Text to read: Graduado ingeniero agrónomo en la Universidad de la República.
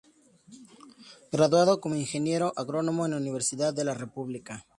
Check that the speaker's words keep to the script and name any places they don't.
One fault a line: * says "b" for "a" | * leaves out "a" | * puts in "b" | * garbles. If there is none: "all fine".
* puts in "como"